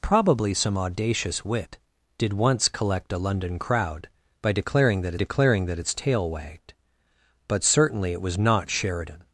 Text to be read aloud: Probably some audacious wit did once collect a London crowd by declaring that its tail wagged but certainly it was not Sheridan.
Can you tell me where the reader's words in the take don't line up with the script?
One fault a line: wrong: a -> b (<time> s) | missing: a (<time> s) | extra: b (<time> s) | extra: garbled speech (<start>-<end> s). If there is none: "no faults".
extra: declaring that (5.1 s)